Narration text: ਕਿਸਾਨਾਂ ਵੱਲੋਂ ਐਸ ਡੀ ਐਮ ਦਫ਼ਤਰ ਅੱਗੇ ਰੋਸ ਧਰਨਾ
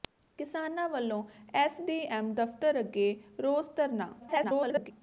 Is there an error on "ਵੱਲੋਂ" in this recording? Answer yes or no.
no